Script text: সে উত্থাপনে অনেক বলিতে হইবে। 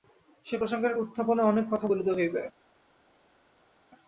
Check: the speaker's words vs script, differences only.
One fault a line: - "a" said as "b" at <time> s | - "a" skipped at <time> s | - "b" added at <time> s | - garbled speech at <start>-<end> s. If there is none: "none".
- "প্রসঙ্গের" added at 0.6 s
- "কথা" added at 1.7 s